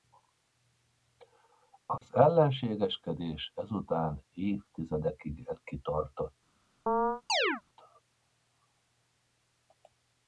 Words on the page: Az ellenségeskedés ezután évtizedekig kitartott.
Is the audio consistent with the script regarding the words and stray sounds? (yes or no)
no